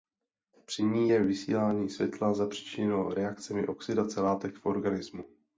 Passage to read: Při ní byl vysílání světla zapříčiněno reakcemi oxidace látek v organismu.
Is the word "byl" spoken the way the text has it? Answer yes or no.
no